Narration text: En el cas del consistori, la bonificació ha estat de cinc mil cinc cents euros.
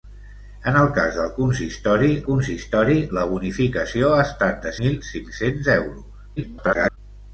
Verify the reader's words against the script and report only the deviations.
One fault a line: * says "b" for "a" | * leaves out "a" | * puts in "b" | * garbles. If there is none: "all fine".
* puts in "consistori"
* leaves out "cinc"
* garbles